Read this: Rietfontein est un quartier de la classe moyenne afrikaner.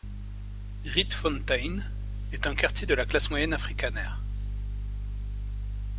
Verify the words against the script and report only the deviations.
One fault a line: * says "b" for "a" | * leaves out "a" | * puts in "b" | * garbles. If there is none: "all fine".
all fine